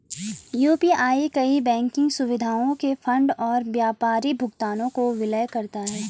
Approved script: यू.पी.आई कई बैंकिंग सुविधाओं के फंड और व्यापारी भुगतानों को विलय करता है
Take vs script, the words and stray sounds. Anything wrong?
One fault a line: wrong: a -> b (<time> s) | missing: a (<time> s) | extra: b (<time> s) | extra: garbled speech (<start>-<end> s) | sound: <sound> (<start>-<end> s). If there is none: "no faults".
no faults